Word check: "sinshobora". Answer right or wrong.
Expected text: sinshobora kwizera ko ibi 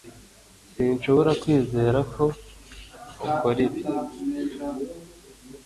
right